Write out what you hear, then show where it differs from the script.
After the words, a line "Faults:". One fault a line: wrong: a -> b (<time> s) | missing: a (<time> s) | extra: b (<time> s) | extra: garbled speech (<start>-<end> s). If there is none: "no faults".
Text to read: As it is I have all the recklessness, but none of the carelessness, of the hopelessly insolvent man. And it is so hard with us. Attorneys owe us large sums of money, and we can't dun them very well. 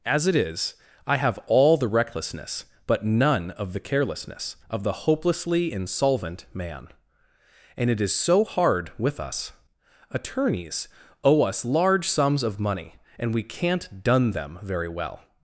As it is I have all the recklessness, but none of the carelessness, of the hopelessly insolvent man. And it is so hard with us. Attorneys owe us large sums of money, and we can't dun them very well.
Faults:
no faults